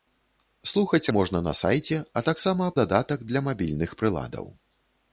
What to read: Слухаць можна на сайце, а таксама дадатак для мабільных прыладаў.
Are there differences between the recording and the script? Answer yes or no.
no